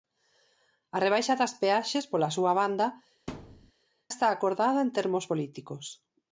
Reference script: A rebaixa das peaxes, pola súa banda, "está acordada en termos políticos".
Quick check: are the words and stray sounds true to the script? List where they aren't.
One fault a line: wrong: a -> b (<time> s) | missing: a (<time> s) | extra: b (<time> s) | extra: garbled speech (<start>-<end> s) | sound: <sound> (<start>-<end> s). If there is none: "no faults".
sound: thud (3.3-3.7 s)